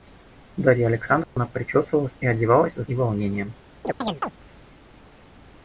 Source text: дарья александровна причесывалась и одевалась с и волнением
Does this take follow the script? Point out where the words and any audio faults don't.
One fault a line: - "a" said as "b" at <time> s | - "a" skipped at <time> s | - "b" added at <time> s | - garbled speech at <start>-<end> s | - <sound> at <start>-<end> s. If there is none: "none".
- dropout at 1.2-1.4 s
- chirp at 3.8-4.3 s